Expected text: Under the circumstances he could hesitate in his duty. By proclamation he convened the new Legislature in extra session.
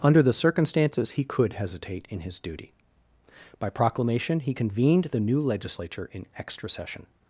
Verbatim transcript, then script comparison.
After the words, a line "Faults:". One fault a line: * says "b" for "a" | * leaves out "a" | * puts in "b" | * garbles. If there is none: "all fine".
Under the circumstances he could hesitate in his duty. By proclamation he convened the new Legislature in extra session.
Faults:
all fine